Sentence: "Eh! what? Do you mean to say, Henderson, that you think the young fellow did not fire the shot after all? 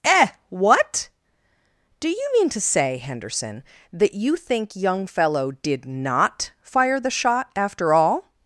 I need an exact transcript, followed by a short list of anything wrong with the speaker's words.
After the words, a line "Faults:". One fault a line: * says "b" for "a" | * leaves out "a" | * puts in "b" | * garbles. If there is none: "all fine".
"Eh! what? Do you mean to say, Henderson, that you think young fellow did not fire the shot after all?
Faults:
* leaves out "the"